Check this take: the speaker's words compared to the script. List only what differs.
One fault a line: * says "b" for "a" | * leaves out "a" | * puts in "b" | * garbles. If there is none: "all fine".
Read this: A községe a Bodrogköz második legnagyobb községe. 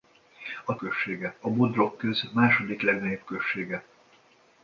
all fine